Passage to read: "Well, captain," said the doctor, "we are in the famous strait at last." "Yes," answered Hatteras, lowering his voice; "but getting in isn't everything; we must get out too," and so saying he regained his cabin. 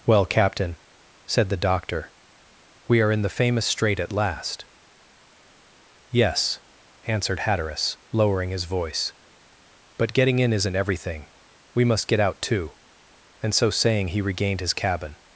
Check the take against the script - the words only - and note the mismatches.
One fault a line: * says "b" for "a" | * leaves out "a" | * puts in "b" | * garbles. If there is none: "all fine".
all fine